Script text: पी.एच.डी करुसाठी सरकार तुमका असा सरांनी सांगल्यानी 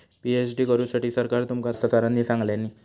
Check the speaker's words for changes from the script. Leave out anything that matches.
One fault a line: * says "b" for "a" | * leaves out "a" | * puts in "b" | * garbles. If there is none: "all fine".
all fine